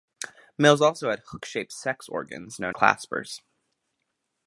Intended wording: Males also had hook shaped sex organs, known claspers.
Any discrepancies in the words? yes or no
no